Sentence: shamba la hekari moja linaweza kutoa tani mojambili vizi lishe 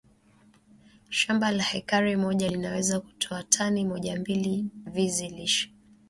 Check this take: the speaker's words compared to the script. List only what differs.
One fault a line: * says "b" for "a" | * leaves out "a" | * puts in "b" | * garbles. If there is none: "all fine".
all fine